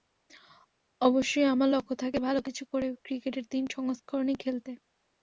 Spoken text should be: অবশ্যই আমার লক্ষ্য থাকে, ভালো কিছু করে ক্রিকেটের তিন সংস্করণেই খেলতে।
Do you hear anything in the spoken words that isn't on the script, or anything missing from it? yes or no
no